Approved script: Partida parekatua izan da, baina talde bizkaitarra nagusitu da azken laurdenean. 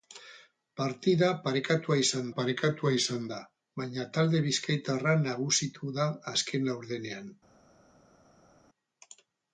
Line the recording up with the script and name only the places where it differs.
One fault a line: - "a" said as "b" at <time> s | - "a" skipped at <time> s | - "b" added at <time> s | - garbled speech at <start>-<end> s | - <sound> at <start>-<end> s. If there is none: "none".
- "parekatua izan" added at 2.3 s